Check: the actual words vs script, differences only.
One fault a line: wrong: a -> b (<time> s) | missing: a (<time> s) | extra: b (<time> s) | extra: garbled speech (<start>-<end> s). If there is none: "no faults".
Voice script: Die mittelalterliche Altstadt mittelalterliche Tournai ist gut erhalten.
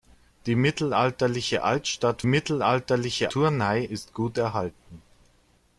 no faults